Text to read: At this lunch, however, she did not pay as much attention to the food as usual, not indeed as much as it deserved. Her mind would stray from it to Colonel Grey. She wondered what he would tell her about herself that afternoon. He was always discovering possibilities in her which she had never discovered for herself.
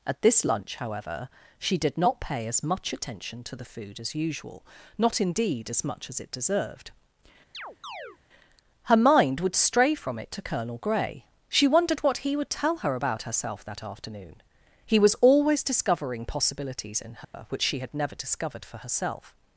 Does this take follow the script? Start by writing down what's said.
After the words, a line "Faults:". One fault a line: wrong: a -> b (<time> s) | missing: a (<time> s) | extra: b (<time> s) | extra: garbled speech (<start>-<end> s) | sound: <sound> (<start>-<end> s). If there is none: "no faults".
At this lunch, however, she did not pay as much attention to the food as usual, not indeed as much as it deserved. Her mind would stray from it to Colonel Grey. She wondered what he would tell her about herself that afternoon. He was always discovering possibilities in her which she had never discovered for herself.
Faults:
sound: chirp (7.5-8.2 s)
sound: dropout (17.2-17.3 s)